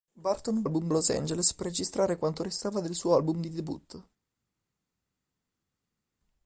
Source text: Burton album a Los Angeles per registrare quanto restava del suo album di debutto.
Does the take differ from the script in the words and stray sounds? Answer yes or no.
no